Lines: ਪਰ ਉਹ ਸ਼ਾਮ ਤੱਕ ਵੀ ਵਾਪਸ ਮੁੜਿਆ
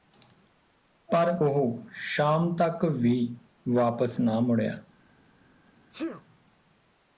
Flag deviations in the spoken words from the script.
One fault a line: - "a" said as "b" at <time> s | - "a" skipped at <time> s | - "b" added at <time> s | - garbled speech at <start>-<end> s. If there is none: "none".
- "ਨਾ" added at 4.2 s